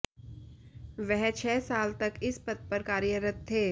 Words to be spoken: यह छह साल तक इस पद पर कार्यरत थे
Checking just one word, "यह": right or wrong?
wrong